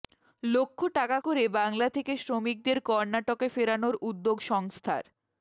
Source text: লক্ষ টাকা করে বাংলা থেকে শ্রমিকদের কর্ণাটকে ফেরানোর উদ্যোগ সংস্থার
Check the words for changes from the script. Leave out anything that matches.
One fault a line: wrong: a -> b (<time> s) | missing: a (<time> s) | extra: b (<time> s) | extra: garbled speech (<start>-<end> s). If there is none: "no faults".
no faults